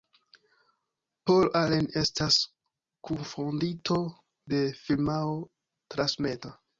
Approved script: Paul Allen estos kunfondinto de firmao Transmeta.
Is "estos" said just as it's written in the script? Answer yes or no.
no